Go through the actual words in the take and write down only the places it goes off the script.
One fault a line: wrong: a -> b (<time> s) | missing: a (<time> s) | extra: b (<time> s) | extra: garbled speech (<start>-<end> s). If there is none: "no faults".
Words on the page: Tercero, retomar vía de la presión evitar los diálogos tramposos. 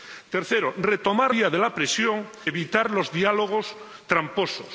no faults